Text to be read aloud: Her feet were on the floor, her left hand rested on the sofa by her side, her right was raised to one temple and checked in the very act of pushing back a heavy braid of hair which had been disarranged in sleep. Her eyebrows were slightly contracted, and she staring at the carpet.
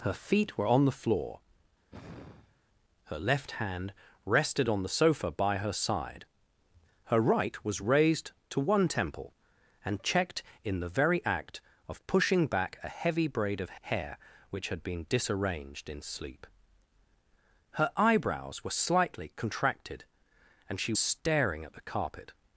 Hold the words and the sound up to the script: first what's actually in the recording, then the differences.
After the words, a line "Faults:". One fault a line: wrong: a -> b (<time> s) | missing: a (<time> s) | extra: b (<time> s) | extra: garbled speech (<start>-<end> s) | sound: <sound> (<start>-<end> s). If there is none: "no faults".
Her feet were on the floor, her left hand rested on the sofa by her side, her right was raised to one temple and checked in the very act of pushing back a heavy braid of hair which had been disarranged in sleep. Her eyebrows were slightly contracted, and she staring at the carpet.
Faults:
sound: sigh (1.9-2.6 s)